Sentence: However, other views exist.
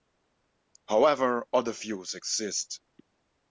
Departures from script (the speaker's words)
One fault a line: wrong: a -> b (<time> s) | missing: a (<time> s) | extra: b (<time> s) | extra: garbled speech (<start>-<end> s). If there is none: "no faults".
no faults